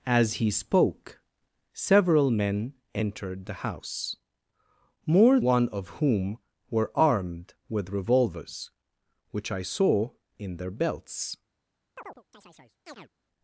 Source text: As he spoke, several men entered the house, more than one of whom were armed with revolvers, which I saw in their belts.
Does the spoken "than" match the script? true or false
false